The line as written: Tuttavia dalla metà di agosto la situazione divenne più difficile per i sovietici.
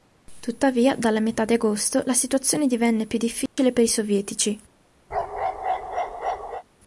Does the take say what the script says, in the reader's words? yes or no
yes